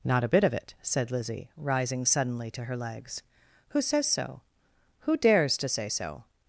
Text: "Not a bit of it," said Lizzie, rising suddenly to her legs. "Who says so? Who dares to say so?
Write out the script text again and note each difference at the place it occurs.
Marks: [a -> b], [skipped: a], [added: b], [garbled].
"Not a bit of it," said Lizzie, rising suddenly to her legs. "Who says so? Who dares to say so?